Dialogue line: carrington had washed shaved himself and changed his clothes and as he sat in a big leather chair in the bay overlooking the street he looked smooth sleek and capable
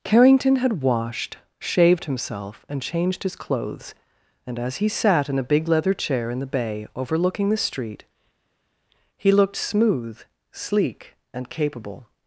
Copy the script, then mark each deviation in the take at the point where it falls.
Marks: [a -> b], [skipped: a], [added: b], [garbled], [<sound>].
carrington had washed shaved himself and changed his clothes and as he sat in a big leather chair in the bay overlooking the street he looked smooth sleek and capable